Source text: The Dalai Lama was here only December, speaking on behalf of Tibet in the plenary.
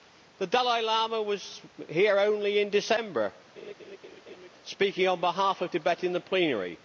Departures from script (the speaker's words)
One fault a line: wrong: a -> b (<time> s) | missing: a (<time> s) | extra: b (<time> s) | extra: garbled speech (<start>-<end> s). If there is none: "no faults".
extra: in (2.6 s)